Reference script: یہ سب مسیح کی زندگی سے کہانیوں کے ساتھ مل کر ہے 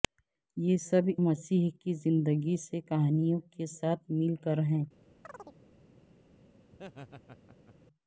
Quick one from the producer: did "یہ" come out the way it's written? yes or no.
yes